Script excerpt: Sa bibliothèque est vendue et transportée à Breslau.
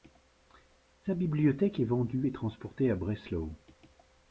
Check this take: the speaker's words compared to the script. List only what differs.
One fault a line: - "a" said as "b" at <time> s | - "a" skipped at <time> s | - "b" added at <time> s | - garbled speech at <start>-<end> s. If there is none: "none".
none